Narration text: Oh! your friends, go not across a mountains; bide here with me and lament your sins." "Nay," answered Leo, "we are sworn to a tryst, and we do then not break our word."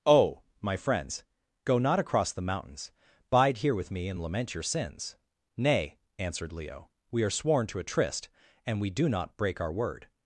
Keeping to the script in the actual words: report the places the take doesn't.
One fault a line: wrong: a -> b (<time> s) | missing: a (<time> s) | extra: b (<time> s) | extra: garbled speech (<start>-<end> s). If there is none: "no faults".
wrong: your -> my (0.6 s)
wrong: a -> the (2.3 s)
missing: then (9.1 s)